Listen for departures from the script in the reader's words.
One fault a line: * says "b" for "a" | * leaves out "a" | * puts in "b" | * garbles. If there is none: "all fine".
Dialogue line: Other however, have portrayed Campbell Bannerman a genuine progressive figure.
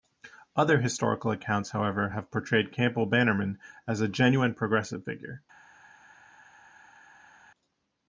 * puts in "historical accounts"
* puts in "as"